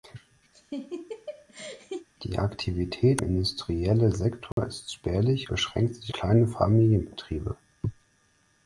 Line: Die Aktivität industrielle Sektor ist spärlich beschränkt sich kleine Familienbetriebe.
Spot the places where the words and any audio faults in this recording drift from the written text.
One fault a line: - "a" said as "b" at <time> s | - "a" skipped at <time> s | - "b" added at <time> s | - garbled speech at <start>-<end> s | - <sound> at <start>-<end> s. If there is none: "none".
- laugh at 0.5-2.1 s
- dropout at 4.5-4.6 s